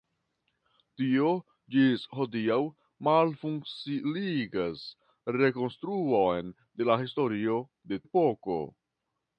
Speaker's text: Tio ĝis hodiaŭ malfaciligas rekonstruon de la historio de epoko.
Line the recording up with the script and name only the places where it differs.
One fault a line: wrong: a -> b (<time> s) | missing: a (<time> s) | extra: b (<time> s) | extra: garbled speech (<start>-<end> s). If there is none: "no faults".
no faults